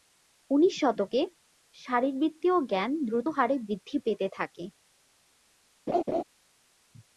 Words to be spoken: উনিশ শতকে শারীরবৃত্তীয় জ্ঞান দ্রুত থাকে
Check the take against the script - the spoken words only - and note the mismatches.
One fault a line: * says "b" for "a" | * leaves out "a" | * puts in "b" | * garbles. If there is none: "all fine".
* puts in "হারে বৃদ্ধি পেতে"